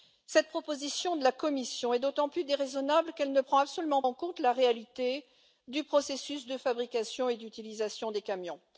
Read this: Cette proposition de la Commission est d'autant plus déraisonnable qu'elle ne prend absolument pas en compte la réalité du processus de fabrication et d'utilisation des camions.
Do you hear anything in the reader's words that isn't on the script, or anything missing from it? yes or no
yes